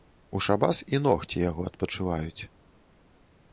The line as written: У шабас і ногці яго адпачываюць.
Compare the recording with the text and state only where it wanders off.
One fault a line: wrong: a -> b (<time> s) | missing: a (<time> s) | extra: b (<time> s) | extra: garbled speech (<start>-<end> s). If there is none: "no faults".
no faults